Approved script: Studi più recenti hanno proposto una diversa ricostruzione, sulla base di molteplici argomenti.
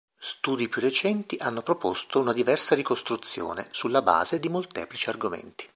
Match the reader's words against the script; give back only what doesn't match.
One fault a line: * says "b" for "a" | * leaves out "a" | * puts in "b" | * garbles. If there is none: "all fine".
all fine